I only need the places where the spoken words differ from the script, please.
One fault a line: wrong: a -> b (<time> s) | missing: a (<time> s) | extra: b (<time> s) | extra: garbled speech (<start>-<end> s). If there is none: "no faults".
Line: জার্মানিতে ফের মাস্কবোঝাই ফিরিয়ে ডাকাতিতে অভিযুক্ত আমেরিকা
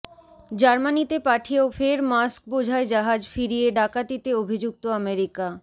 extra: পাঠিয়েও (1.2 s)
extra: জাহাজ (2.9 s)